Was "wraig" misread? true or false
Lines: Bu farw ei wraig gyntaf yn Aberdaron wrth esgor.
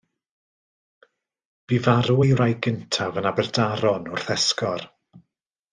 false